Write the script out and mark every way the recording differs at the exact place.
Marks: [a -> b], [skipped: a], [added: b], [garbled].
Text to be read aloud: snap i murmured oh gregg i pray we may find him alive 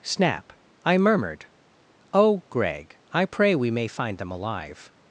snap i murmured oh gregg i pray we may find [him -> them] alive